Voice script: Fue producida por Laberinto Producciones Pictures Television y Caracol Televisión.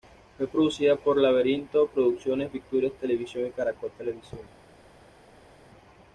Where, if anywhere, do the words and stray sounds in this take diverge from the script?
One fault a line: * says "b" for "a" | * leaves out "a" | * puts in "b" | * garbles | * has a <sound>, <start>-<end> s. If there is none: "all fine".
all fine